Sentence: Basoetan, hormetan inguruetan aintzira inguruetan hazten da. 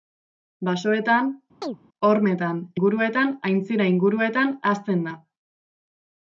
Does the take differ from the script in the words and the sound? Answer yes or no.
yes